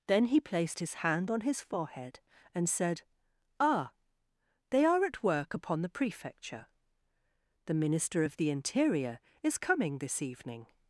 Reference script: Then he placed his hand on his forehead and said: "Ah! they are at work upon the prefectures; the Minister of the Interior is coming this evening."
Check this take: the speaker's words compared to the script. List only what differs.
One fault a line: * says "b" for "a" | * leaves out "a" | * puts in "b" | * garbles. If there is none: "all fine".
* says "prefecture" for "prefectures"